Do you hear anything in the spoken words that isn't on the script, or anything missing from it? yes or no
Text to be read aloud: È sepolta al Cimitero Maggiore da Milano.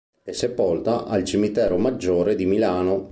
yes